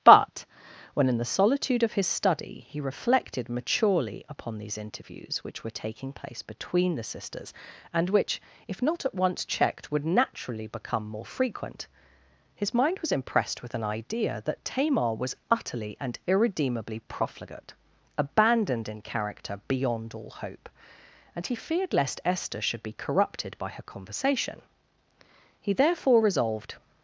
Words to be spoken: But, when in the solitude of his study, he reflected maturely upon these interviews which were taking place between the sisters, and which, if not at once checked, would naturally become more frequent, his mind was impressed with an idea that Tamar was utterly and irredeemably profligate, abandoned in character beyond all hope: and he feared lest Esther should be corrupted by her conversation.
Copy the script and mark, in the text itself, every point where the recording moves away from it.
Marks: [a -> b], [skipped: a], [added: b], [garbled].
But, when in the solitude of his study, he reflected maturely upon these interviews which were taking place between the sisters, and which, if not at once checked, would naturally become more frequent, his mind was impressed with an idea that Tamar was utterly and irredeemably profligate, abandoned in character beyond all hope: and he feared lest Esther should be corrupted by her conversation. [added: He therefore resolved]